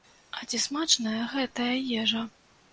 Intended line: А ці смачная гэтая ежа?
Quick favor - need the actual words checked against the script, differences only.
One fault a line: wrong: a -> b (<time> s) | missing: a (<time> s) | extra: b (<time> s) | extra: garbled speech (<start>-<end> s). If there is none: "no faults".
no faults